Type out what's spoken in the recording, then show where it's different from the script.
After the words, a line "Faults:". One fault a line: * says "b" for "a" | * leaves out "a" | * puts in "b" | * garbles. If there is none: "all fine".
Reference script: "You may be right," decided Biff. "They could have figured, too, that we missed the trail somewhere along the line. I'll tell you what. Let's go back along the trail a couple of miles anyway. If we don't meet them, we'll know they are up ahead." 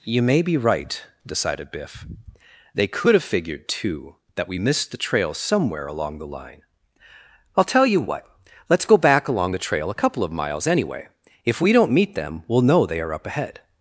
"You may be right," decided Biff. "They could have figured, too, that we missed the trail somewhere along the line. I'll tell you what. Let's go back along the trail a couple of miles anyway. If we don't meet them, we'll know they are up ahead."
Faults:
all fine